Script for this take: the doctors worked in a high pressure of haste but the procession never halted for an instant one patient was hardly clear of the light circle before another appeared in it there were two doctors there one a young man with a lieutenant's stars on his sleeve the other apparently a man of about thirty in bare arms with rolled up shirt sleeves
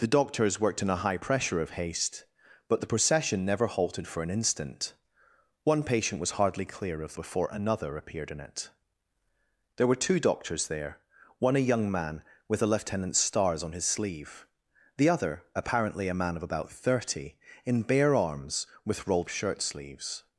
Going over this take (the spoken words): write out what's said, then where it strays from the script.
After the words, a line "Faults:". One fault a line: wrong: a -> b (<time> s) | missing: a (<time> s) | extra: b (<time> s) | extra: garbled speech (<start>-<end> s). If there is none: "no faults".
the doctors worked in a high pressure of haste but the procession never halted for an instant one patient was hardly clear of before another appeared in it there were two doctors there one a young man with a lieutenant's stars on his sleeve the other apparently a man of about thirty in bare arms with rolled shirt sleeves
Faults:
missing: the light circle (7.2 s)
missing: up (19.3 s)